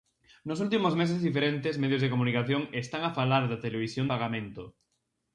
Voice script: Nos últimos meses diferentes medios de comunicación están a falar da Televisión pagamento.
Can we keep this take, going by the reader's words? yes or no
yes